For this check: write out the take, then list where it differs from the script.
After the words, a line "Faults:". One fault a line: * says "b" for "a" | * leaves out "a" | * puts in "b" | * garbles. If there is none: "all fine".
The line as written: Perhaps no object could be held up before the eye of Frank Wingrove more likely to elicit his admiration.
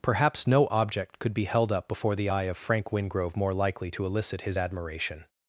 Perhaps no object could be held up before the eye of Frank Wingrove more likely to elicit his admiration.
Faults:
all fine